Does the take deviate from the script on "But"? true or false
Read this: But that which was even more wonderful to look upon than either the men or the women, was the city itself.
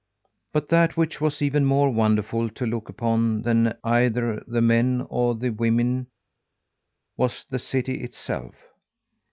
false